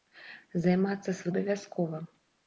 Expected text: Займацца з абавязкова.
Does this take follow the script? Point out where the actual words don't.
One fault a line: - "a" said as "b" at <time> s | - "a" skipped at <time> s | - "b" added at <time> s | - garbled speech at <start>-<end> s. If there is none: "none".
none